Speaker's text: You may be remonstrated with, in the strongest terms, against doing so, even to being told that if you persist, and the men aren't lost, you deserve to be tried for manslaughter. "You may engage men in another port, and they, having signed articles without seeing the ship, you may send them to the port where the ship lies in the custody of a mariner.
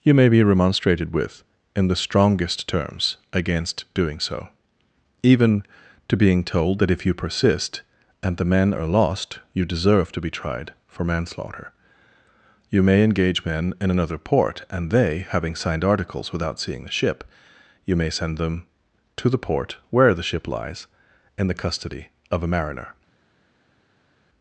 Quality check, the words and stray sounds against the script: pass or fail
fail